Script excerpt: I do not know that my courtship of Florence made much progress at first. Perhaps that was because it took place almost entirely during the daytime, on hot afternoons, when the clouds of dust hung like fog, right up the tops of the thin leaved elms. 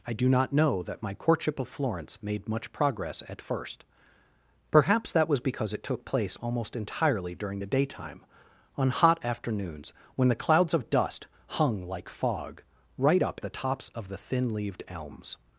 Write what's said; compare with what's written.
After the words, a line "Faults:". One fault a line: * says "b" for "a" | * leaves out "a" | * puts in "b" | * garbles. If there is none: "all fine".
I do not know that my courtship of Florence made much progress at first. Perhaps that was because it took place almost entirely during the daytime, on hot afternoons, when the clouds of dust hung like fog, right up the tops of the thin leaved elms.
Faults:
all fine